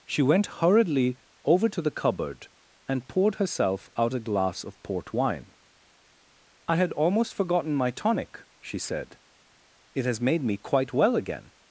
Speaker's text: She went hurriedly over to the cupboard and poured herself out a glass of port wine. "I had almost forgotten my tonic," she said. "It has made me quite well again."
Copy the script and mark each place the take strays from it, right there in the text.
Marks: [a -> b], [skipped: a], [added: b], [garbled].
She went hurriedly over to the cupboard and poured herself out a glass of port wine. "I had almost forgotten my tonic," she said. "It has made me quite well again."